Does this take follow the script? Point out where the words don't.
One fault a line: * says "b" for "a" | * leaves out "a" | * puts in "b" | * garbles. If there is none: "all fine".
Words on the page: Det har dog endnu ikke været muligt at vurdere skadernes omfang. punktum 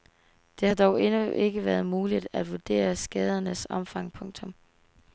all fine